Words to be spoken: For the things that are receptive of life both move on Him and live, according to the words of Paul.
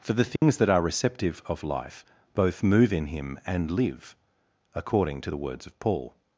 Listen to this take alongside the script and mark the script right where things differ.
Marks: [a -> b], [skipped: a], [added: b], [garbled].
For the things that are receptive of life both move [on -> in] Him and live, according to the words of Paul.